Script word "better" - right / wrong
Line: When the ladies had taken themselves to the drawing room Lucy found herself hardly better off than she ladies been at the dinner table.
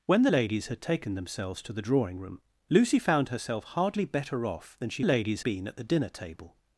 right